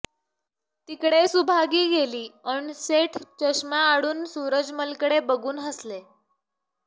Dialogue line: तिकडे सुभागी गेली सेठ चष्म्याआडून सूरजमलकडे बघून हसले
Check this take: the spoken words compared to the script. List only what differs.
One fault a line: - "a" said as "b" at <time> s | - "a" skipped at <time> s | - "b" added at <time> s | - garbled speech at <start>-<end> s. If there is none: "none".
- "अन्" added at 2.5 s